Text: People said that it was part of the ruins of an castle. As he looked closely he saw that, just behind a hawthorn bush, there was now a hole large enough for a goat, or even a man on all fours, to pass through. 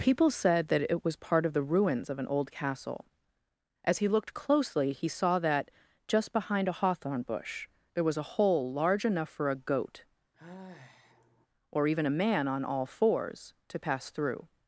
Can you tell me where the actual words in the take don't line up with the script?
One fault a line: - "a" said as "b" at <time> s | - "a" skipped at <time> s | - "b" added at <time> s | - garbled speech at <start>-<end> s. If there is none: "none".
- "old" added at 2.2 s
- "now" skipped at 8.2 s